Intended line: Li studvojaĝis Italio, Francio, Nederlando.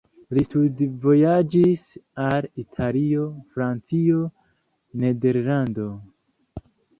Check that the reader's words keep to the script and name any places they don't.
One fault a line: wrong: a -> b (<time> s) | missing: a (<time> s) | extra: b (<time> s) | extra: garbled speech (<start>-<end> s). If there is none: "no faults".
extra: al (2.2 s)